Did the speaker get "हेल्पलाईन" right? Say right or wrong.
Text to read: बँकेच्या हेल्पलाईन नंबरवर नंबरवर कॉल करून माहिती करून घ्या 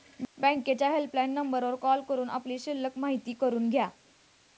right